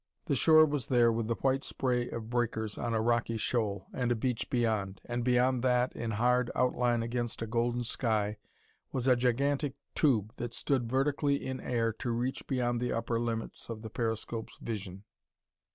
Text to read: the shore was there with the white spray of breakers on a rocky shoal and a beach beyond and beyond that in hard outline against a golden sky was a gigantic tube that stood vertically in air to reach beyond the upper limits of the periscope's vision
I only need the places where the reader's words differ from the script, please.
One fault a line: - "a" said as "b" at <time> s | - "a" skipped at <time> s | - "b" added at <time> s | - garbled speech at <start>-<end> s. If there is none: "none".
none